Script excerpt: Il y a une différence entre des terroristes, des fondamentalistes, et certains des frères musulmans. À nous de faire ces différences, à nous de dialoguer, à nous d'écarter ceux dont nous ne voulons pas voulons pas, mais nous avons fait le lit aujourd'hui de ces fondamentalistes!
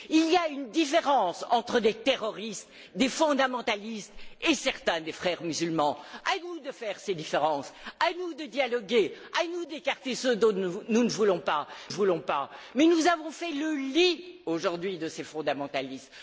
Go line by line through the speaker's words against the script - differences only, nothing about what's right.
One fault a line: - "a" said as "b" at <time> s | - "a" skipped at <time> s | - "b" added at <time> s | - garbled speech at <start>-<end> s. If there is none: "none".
none